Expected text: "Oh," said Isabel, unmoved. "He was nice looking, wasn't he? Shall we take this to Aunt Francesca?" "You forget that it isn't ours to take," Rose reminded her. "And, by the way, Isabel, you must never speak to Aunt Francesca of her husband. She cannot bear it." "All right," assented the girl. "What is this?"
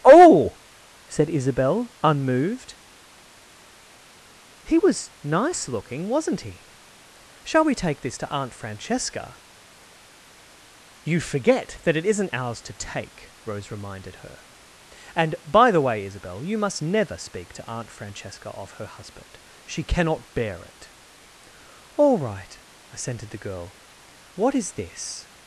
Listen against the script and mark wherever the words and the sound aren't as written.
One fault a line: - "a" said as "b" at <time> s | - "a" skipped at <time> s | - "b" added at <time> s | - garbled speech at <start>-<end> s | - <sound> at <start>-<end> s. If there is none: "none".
none